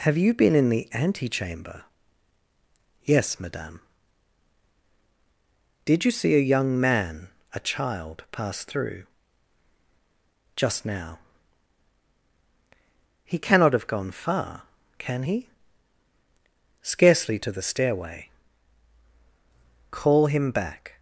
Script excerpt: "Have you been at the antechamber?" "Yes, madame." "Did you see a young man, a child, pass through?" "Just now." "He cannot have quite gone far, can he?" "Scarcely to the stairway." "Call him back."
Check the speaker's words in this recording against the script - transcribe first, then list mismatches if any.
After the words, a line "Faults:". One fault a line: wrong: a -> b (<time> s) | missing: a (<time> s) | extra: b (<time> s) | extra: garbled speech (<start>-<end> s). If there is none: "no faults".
"Have you been in the antechamber?" "Yes, madame." "Did you see a young man, a child, pass through?" "Just now." "He cannot have gone far, can he?" "Scarcely to the stairway." "Call him back."
Faults:
wrong: at -> in (0.6 s)
missing: quite (13.8 s)